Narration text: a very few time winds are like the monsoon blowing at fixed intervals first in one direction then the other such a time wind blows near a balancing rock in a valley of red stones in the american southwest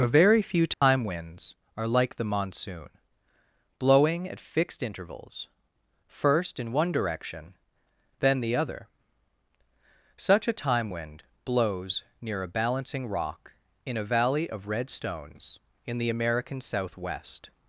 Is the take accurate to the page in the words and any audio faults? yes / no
no